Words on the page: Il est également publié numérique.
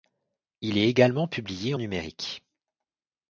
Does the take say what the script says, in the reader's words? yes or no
yes